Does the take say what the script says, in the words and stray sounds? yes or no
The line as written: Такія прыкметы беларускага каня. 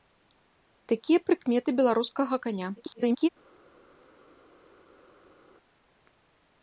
no